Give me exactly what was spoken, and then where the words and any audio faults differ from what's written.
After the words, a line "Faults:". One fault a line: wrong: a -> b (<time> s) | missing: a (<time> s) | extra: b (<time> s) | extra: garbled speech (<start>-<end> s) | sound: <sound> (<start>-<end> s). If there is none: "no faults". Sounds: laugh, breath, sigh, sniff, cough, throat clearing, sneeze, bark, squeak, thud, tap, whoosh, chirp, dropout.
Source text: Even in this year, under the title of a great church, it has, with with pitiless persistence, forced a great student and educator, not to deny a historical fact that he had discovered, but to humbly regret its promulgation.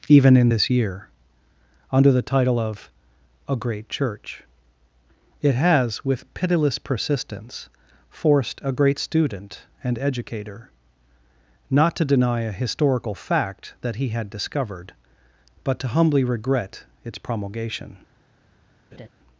Even in this year, under the title of a great church, it has, with pitiless persistence, forced a great student and educator, not to deny a historical fact that he had discovered, but to humbly regret its promulgation.
Faults:
missing: with (6.3 s)
sound: laugh (18.9-19.1 s)